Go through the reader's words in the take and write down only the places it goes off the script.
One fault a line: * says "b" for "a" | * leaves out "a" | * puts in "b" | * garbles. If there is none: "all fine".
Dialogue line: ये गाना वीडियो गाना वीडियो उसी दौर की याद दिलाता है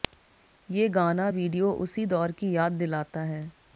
* leaves out "गाना वीडियो"